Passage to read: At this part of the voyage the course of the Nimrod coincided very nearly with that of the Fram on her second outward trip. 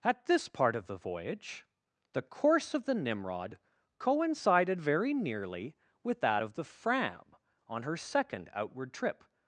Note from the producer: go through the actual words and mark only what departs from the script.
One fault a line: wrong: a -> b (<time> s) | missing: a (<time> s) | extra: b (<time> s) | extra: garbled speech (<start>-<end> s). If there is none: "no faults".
no faults